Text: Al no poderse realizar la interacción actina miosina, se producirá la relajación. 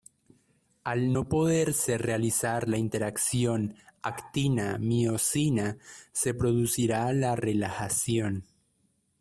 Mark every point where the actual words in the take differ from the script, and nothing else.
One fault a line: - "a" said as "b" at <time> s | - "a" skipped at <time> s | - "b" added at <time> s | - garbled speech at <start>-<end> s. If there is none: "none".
none